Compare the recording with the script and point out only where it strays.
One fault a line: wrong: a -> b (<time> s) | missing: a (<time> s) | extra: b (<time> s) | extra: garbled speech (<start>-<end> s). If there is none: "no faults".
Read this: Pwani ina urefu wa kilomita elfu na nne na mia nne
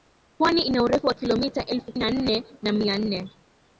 no faults